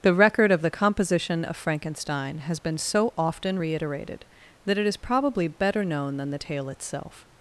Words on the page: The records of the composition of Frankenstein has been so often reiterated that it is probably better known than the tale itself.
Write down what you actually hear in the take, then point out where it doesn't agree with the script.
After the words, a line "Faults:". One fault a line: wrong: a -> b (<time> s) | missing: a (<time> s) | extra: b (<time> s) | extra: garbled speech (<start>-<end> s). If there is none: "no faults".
The record of the composition of Frankenstein has been so often reiterated that it is probably better known than the tale itself.
Faults:
wrong: records -> record (0.1 s)